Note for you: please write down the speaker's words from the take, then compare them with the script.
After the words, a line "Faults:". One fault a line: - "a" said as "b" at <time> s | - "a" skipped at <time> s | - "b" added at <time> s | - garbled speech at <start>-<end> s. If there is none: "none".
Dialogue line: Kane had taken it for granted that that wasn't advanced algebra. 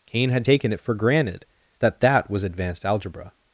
Kane had taken it for granted that that was advanced algebra.
Faults:
- "wasn't" said as "was" at 2.3 s